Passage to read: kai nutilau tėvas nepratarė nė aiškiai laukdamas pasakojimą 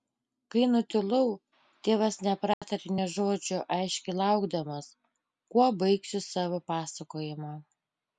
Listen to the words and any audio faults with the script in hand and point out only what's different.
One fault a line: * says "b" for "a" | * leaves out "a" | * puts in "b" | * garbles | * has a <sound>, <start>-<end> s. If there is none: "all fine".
* has a dropout, 2.5-2.6 s
* puts in "žodžio"
* puts in "kuo baigsiu savo"